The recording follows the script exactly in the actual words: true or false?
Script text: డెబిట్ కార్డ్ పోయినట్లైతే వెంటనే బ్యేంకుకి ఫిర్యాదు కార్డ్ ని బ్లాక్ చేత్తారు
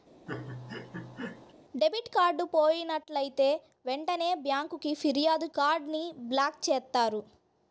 true